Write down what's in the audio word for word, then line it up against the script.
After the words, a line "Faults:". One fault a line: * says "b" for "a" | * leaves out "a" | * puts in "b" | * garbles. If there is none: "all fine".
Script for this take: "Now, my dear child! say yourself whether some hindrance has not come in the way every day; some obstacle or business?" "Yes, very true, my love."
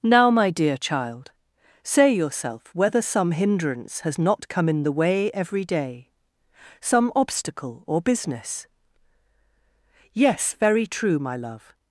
"Now, my dear child! say yourself whether some hindrance has not come in the way every day; some obstacle or business?" "Yes, very true, my love."
Faults:
all fine